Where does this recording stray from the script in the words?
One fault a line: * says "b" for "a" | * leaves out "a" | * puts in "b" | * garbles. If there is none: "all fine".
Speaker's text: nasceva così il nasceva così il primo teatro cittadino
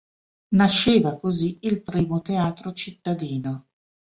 * leaves out "nasceva così il"